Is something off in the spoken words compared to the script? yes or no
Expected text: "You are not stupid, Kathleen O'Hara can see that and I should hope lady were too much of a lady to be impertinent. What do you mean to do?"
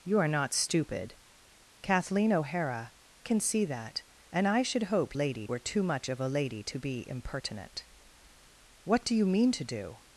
no